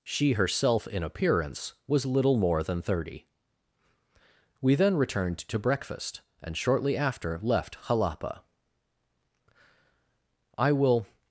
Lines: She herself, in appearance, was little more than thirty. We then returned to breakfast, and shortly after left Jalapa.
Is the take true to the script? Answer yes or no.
no